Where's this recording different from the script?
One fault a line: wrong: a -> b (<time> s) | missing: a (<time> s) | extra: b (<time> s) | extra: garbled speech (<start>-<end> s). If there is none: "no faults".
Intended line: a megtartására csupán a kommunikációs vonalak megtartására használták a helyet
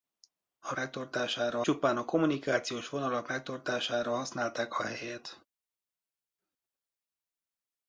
no faults